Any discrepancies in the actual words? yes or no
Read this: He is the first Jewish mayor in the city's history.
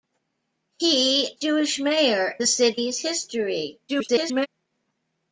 yes